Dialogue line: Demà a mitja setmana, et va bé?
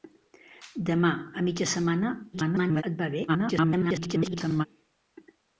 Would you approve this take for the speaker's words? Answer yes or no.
no